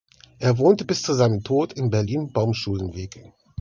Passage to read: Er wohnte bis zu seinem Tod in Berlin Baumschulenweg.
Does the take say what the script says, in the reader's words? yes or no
yes